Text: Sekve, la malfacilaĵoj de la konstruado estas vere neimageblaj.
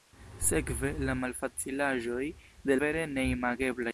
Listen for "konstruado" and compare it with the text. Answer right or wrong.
wrong